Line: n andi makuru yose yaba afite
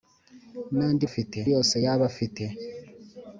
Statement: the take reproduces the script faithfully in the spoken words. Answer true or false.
false